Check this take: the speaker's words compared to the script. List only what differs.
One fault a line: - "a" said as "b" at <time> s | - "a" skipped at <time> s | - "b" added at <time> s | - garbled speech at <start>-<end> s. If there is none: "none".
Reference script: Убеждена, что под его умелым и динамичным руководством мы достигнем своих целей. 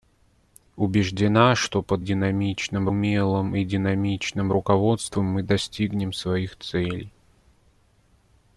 - "его" said as "динамичным" at 2.0 s